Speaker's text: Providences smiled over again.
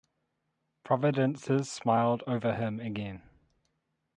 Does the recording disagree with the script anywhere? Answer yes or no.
yes